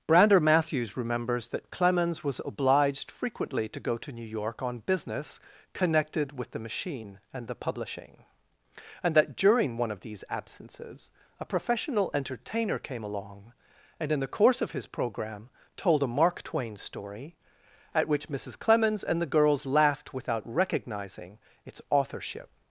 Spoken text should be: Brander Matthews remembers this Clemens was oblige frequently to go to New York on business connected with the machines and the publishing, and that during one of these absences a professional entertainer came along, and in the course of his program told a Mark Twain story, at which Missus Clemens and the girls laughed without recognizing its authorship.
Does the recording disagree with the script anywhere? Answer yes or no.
yes